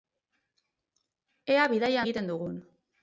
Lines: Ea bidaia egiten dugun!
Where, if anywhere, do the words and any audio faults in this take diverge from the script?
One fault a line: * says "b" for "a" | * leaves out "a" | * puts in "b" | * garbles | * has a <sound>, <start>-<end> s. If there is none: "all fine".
all fine